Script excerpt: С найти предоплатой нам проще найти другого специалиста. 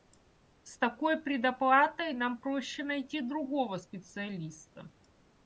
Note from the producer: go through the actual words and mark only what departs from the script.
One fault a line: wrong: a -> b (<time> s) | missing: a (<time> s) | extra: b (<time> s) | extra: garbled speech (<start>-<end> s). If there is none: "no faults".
wrong: найти -> такой (0.8 s)